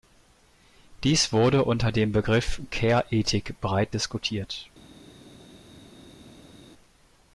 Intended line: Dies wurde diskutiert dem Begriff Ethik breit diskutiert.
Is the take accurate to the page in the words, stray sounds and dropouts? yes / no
no